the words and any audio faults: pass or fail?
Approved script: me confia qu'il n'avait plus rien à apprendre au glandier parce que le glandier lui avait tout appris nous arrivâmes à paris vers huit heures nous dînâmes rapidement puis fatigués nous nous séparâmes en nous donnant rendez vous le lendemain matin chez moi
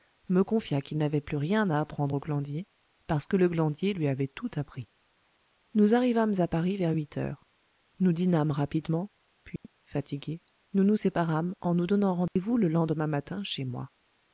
fail